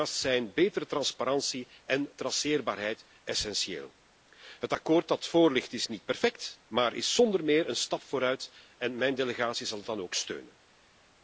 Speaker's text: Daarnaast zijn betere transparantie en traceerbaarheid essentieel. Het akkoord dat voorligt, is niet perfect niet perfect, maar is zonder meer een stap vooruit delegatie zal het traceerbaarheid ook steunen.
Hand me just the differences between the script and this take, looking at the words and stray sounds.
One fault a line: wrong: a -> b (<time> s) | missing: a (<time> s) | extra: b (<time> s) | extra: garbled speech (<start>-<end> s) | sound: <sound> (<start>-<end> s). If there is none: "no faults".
missing: niet perfect (6.6 s)
extra: en mijn (8.8 s)
wrong: traceerbaarheid -> dan (9.9 s)